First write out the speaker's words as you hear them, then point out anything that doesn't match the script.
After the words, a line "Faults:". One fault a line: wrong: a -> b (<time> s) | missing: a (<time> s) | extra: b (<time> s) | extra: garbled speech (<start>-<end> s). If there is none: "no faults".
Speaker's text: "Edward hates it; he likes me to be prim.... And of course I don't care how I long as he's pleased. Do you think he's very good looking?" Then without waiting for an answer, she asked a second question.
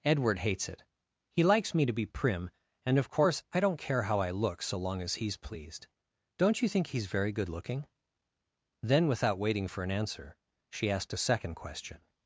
"Edward hates it; he likes me to be prim.... And of course I don't care how I look so long as he's pleased. Don't you think he's very good looking?" Then without waiting for an answer, she asked a second question.
Faults:
extra: look so (4.3 s)
wrong: Do -> Don't (6.4 s)